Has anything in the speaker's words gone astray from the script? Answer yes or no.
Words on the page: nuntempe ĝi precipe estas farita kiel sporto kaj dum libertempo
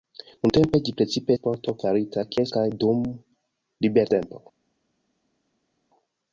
yes